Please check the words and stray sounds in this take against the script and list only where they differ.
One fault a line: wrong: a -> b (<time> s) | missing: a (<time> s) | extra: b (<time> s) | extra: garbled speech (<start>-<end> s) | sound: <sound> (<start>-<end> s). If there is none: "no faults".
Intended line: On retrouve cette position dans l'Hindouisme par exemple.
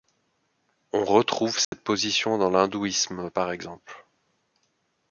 sound: dropout (1.6-1.7 s)